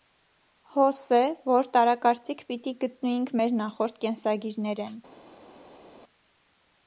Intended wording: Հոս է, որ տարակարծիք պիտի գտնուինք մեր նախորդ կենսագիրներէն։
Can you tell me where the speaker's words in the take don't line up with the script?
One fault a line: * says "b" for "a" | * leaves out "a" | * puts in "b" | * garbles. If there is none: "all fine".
all fine